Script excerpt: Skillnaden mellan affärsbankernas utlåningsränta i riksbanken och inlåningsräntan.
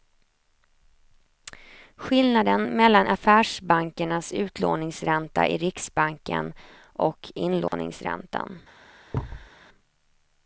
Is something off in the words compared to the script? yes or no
no